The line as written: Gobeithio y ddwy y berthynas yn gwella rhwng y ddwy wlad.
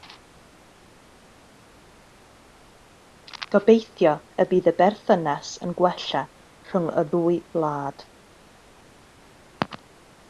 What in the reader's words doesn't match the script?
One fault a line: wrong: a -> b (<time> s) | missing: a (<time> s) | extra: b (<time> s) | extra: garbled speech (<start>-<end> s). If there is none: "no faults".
wrong: ddwy -> bydd (4.5 s)